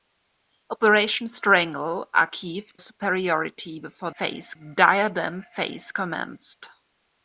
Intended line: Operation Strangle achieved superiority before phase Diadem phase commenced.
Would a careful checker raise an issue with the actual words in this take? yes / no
no